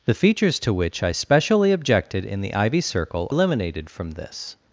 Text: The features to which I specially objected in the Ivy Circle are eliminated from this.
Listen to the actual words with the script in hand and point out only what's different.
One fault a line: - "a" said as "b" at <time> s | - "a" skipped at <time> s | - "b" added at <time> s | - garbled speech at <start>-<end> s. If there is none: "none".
- "are" skipped at 3.3 s